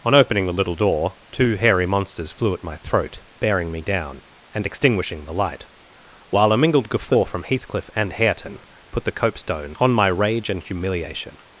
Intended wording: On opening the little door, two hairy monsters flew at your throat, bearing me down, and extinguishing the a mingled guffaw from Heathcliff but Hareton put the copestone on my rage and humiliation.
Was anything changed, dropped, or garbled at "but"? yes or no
yes